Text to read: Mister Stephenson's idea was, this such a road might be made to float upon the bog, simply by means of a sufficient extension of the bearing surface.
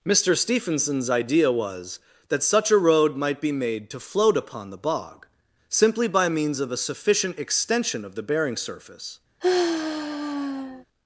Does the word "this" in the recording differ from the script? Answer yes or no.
yes